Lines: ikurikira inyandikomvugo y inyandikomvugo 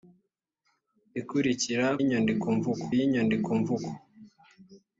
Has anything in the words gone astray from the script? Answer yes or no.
no